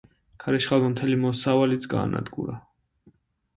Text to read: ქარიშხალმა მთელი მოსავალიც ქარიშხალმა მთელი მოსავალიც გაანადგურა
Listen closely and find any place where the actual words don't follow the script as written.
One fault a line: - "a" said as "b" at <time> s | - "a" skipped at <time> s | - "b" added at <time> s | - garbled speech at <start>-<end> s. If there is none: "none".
- "ქარიშხალმა მთელი მოსავალიც" skipped at 1.9 s